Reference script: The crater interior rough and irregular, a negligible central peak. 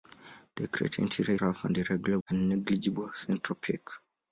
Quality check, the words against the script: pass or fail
pass